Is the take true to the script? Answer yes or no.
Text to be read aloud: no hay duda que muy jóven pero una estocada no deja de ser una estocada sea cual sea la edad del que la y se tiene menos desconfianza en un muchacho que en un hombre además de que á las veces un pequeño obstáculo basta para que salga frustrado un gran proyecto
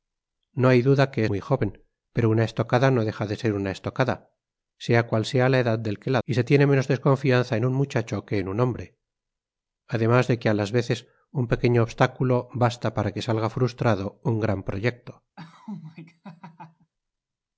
yes